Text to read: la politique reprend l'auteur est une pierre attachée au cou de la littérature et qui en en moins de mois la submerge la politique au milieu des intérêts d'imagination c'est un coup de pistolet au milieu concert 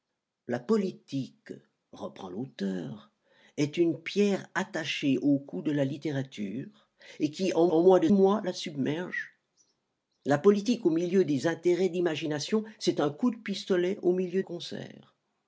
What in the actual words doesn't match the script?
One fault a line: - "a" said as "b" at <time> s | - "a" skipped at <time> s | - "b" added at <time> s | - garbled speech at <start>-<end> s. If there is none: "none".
none